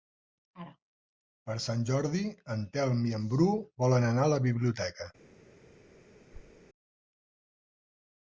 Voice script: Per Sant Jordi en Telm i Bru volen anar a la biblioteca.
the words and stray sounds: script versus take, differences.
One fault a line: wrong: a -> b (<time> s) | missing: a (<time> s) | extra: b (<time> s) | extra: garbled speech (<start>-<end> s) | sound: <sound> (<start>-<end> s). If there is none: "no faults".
extra: en (3.2 s)
sound: thud (6.3-6.6 s)